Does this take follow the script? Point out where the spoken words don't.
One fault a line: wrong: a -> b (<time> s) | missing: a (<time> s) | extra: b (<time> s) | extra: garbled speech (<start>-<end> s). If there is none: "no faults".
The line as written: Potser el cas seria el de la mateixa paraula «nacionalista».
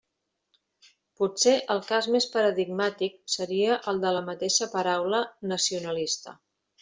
extra: més paradigmàtic (2.1 s)